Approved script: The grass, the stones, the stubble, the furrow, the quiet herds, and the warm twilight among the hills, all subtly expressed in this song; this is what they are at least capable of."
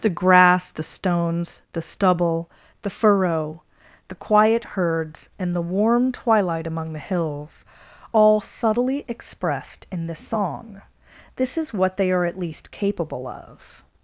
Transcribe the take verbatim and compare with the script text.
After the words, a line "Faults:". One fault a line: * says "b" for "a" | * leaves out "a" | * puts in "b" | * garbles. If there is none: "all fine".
The grass, the stones, the stubble, the furrow, the quiet herds, and the warm twilight among the hills, all subtly expressed in this song; this is what they are at least capable of."
Faults:
all fine